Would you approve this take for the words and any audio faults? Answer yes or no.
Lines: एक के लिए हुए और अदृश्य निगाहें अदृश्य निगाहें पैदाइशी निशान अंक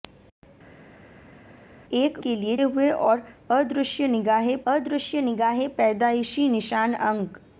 yes